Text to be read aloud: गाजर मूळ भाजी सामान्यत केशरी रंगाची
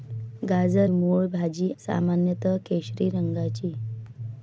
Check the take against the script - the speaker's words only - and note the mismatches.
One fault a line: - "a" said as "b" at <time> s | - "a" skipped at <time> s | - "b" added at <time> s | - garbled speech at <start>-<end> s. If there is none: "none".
none